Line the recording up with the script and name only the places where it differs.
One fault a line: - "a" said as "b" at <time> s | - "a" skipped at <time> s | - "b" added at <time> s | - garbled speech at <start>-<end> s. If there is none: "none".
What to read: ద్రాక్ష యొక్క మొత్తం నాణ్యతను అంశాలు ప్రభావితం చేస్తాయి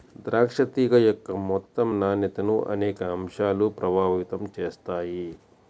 - "తీగ" added at 0.7 s
- "అనేక" added at 2.7 s